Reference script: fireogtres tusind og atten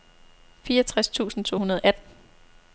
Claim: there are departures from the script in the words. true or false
true